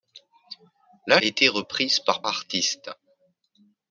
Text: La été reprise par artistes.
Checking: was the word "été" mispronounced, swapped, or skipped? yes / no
no